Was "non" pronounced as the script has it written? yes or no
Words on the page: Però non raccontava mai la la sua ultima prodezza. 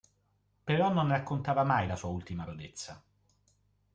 yes